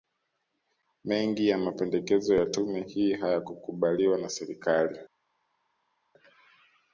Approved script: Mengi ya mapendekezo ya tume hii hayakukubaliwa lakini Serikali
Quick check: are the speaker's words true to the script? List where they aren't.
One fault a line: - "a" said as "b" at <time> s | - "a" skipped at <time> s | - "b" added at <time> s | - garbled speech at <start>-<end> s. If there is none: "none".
- "lakini" said as "na" at 4.2 s